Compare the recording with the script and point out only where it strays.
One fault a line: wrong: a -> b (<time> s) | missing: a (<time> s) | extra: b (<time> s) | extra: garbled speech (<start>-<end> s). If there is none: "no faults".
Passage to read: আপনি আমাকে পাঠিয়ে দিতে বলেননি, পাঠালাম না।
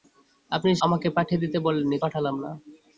no faults